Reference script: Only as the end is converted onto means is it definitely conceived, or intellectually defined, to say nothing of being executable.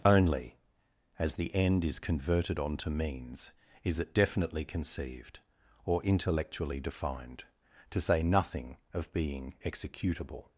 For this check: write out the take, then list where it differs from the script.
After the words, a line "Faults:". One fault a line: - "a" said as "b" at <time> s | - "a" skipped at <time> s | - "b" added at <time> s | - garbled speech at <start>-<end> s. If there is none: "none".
Only as the end is converted onto means is it definitely conceived, or intellectually defined, to say nothing of being executable.
Faults:
none